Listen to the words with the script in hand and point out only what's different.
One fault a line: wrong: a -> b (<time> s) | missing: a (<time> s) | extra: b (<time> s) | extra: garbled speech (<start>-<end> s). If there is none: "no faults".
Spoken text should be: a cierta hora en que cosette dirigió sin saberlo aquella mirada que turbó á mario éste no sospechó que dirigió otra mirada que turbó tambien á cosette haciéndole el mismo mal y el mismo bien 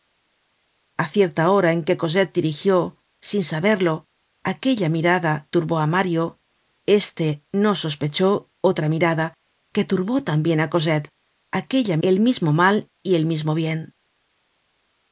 missing: que (5.3 s)
missing: que dirigió (8.3 s)
wrong: haciéndole -> aquella (11.6 s)